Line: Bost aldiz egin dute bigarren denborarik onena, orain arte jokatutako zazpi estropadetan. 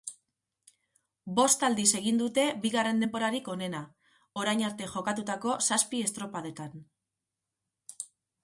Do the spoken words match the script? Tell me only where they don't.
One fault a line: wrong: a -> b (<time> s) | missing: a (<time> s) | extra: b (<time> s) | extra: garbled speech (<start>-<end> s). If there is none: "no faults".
no faults